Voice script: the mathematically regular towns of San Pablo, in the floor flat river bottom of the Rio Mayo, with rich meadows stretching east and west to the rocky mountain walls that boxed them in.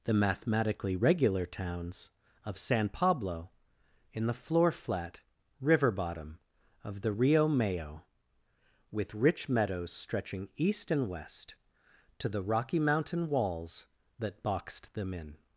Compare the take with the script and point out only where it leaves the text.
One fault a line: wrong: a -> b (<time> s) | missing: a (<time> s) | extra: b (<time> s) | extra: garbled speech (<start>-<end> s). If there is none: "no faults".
no faults